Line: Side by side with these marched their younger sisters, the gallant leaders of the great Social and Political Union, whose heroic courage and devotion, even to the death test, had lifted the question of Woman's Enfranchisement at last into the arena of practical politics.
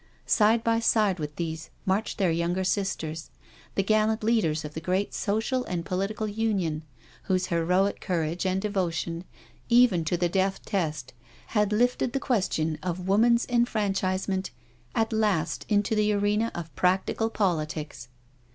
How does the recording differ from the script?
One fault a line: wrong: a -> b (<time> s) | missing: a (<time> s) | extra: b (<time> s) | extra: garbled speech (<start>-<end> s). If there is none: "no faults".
no faults